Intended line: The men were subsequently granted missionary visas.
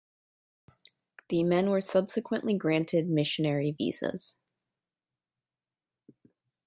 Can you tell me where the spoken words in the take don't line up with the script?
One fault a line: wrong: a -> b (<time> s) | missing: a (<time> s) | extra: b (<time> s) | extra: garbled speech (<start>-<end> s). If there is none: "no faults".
no faults